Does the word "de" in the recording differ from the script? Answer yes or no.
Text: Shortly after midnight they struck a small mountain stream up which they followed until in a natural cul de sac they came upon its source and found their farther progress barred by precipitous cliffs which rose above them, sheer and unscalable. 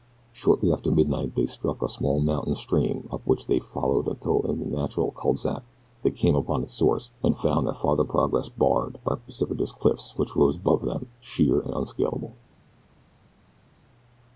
yes